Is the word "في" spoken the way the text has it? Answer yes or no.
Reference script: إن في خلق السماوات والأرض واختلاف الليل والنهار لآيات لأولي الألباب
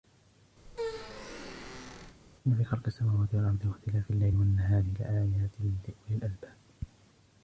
yes